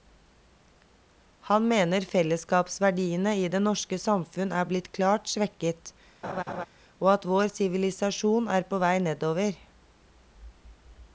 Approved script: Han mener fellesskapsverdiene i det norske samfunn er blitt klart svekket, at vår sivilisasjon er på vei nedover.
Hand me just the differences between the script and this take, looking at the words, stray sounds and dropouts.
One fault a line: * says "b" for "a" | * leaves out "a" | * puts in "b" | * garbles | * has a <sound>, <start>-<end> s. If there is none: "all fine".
* has a laugh, 6.2-6.7 s
* puts in "og"